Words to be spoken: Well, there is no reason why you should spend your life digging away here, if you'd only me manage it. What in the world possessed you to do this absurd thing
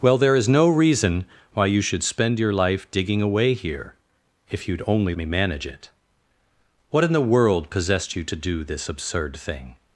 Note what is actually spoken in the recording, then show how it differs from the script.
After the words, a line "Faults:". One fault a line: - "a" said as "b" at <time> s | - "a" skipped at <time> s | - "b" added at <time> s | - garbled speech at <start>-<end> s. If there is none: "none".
Well, there is no reason why you should spend your life digging away here, if you'd only me manage it. What in the world possessed you to do this absurd thing
Faults:
none